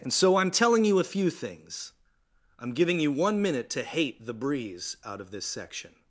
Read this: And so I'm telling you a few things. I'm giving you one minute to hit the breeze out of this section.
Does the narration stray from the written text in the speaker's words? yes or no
yes